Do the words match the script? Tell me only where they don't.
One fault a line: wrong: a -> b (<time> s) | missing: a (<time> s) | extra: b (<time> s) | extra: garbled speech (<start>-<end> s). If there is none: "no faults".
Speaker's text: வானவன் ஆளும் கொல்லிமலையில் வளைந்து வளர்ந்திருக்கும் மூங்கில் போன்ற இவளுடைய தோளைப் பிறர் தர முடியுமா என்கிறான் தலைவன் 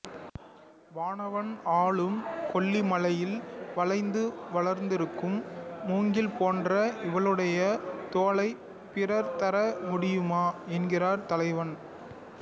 no faults